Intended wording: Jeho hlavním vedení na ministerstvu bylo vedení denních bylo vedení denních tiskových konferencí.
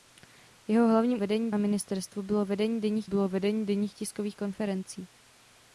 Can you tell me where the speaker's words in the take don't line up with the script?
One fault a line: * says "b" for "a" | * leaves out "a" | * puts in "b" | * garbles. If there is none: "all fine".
all fine